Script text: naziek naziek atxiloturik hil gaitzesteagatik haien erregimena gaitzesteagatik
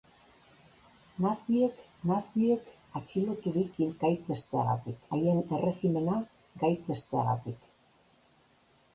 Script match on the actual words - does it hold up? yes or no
yes